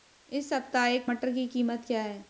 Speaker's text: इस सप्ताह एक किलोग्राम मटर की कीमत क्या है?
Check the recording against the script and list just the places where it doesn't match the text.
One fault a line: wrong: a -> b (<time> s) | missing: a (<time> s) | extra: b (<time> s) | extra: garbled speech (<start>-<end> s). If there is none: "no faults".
missing: किलोग्राम (1.1 s)